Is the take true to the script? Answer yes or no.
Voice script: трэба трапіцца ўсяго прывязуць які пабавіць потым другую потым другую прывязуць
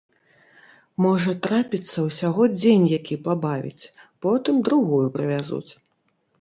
no